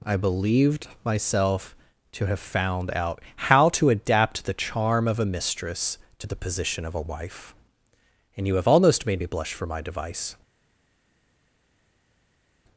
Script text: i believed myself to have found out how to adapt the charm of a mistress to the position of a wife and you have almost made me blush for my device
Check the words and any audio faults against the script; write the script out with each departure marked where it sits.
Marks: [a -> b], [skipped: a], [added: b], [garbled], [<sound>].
i believed myself to have found out how to adapt the charm of a mistress to the position of a wife and you have almost made me blush for my device